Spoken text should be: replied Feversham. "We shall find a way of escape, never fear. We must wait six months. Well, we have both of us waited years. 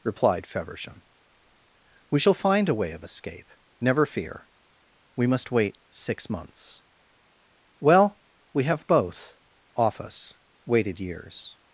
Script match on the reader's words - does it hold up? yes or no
no